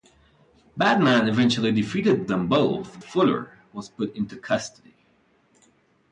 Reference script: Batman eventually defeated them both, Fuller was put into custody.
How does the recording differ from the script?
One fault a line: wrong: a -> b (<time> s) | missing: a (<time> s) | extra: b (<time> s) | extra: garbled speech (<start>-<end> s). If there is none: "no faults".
no faults